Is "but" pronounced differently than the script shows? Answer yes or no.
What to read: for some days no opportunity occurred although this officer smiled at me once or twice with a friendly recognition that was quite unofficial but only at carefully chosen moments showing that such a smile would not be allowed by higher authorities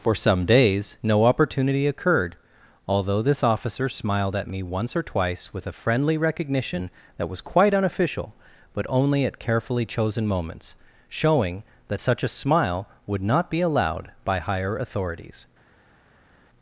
no